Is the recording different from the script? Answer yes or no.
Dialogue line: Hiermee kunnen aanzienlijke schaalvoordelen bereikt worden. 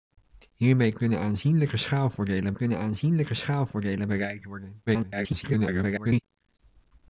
yes